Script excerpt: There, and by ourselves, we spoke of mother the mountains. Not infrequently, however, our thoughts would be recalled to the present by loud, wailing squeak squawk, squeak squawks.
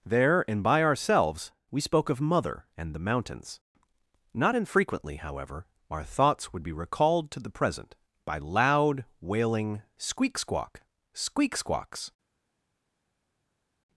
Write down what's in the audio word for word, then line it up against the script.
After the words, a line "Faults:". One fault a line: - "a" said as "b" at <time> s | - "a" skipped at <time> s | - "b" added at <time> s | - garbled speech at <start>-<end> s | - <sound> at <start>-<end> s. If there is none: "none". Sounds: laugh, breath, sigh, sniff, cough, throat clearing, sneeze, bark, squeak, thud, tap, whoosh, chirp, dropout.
There, and by ourselves, we spoke of mother and the mountains. Not infrequently, however, our thoughts would be recalled to the present by loud, wailing squeak squawk, squeak squawks.
Faults:
- "and" added at 2.8 s